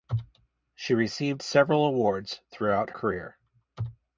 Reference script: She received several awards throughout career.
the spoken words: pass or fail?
pass